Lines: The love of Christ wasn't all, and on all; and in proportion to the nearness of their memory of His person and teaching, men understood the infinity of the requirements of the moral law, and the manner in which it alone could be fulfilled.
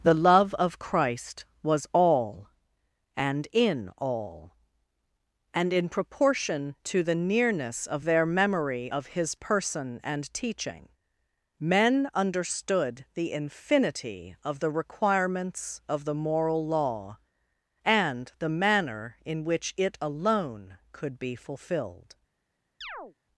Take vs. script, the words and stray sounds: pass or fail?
fail